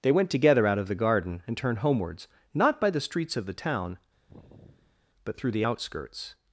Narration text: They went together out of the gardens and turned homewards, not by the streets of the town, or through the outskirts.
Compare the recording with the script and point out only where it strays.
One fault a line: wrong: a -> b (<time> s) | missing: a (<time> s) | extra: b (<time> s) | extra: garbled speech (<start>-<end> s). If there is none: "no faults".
wrong: gardens -> garden (0.9 s)
wrong: or -> but (5.2 s)